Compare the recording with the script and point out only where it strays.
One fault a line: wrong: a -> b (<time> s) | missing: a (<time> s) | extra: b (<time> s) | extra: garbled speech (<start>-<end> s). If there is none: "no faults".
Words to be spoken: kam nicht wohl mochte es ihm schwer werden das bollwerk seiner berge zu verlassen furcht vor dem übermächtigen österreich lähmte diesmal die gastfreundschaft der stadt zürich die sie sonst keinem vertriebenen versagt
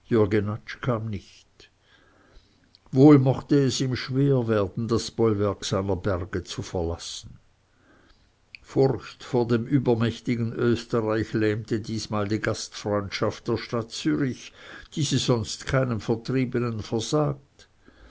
no faults